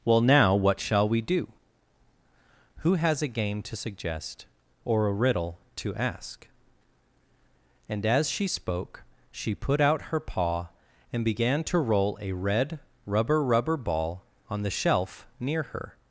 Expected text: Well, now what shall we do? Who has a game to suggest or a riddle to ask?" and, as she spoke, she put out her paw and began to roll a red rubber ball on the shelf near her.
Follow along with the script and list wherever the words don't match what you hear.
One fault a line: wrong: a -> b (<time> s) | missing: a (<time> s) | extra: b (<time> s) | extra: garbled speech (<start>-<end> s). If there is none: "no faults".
extra: rubber (13.4 s)